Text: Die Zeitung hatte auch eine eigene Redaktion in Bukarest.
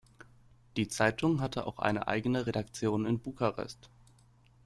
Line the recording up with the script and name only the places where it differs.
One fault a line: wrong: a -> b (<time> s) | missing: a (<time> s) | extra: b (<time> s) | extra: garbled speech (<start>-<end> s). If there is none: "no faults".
no faults